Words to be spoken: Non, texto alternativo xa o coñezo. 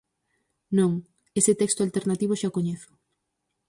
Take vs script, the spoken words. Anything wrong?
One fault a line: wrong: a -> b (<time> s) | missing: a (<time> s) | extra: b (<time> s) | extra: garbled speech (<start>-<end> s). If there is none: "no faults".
extra: ese (1.4 s)